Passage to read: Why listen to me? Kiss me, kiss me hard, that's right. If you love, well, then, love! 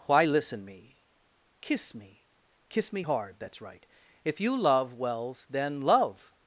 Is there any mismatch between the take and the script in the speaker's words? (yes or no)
yes